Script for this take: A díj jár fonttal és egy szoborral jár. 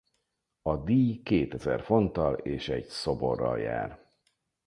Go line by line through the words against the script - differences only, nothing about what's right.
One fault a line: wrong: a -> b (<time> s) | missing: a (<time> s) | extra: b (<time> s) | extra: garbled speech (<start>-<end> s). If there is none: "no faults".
wrong: jár -> kétezer (1.2 s)